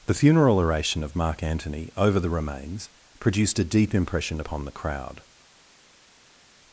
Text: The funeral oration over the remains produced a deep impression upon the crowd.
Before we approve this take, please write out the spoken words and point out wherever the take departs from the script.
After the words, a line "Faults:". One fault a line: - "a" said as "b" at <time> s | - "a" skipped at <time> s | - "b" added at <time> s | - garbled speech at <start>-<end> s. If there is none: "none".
The funeral oration of Mark Antony over the remains produced a deep impression upon the crowd.
Faults:
- "of Mark Antony" added at 1.0 s